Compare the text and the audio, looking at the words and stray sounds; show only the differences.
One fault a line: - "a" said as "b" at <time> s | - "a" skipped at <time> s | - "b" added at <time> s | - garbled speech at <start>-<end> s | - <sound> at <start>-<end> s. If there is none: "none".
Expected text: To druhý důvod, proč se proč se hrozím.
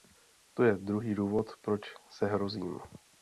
- "je" added at 0.6 s
- "proč se" skipped at 2.2 s